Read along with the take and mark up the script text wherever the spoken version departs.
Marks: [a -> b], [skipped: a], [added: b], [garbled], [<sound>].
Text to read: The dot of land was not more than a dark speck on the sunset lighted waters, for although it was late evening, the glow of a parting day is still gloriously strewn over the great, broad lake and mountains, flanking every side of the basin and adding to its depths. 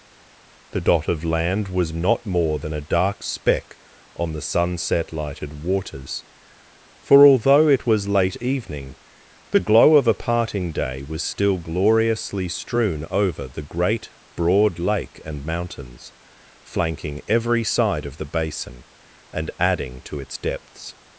The dot of land was not more than a dark speck on the sunset lighted waters, for although it was late evening, the glow of a parting day [is -> was] still gloriously strewn over the great, broad lake and mountains, flanking every side of the basin and adding to its depths.